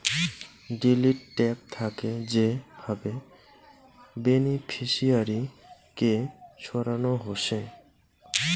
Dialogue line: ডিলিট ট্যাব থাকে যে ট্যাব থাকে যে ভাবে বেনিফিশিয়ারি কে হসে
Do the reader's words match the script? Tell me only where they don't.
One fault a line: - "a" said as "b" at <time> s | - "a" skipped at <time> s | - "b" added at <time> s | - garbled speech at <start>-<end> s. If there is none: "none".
- "ট্যাব থাকে যে" skipped at 2.5 s
- "সরানো" added at 6.6 s